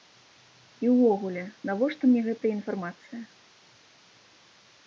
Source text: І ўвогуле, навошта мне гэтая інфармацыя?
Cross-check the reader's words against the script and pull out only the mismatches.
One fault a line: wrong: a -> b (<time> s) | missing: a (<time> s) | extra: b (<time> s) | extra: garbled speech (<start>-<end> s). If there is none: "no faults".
no faults